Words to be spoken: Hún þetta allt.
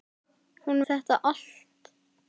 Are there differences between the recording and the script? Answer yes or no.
no